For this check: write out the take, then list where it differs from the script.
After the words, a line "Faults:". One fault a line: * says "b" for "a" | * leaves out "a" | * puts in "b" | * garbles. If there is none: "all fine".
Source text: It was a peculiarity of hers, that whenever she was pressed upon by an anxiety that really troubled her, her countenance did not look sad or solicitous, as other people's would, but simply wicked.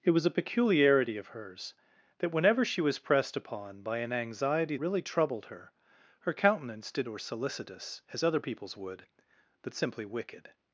It was a peculiarity of hers, that whenever she was pressed upon by an anxiety really troubled her, her countenance did or solicitous, as other people's would, but simply wicked.
Faults:
* leaves out "that"
* leaves out "not look sad"